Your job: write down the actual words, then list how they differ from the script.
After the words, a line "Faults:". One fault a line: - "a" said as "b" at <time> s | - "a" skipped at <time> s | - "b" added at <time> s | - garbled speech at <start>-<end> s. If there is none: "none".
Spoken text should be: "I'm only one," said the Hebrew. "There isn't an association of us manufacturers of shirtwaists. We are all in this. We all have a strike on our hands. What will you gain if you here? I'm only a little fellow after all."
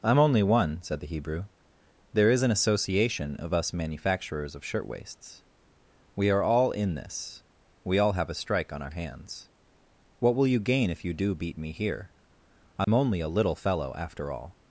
"I'm only one," said the Hebrew. "There is an association of us manufacturers of shirtwaists. We are all in this. We all have a strike on our hands. What will you gain if you do beat me here? I'm only a little fellow after all."
Faults:
- "isn't" said as "is" at 2.3 s
- "do beat me" added at 11.1 s